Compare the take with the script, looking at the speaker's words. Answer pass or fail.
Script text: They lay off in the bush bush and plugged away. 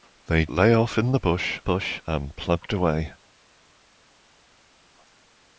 pass